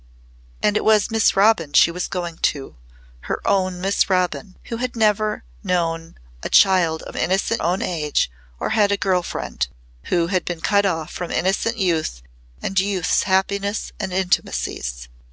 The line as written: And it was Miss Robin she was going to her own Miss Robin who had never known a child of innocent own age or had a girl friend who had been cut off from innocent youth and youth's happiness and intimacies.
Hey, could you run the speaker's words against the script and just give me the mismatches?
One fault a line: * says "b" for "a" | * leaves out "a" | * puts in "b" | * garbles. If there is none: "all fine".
all fine